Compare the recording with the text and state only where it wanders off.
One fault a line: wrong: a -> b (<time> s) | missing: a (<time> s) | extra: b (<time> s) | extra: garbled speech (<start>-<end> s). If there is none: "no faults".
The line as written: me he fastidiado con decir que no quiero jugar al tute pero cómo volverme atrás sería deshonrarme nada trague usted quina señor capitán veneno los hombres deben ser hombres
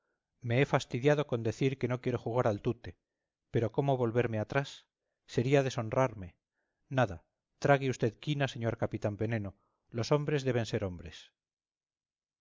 no faults